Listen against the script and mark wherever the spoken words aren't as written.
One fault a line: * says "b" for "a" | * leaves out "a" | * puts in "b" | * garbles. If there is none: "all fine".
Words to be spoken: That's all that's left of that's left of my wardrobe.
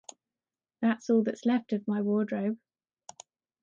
* leaves out "that's left of"